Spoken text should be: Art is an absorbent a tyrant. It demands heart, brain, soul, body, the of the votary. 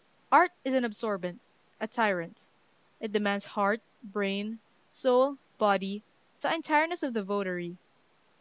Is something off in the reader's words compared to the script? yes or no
yes